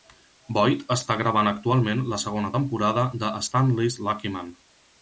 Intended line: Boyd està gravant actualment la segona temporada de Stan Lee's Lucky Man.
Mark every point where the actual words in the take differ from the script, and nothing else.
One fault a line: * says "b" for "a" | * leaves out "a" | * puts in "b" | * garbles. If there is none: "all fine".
all fine